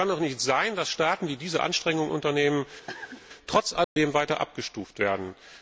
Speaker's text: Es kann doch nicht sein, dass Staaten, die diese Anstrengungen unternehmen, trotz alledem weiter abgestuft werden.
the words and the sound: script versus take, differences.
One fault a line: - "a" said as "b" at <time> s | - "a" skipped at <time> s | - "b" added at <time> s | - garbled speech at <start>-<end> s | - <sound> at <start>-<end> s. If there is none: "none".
- cough at 2.9-3.2 s
- dropout at 3.8-4.0 s